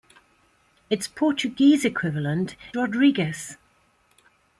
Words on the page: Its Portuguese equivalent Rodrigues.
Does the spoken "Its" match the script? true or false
true